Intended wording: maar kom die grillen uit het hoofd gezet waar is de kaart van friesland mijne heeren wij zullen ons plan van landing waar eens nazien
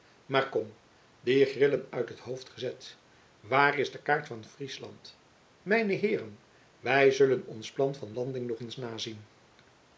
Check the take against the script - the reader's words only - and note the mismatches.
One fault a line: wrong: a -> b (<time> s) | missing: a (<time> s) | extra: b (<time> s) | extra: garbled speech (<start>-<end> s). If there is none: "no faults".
wrong: waar -> nog (8.5 s)